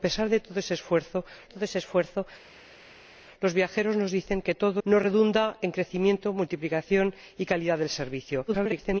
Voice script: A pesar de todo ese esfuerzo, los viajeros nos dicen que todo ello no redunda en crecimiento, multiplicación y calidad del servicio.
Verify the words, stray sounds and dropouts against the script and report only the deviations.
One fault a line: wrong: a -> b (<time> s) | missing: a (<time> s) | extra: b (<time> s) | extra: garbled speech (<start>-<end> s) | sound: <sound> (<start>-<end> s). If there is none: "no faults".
extra: todo ese esfuerzo (1.5 s)
missing: ello (4.8 s)
extra: garbled speech (8.5-9.0 s)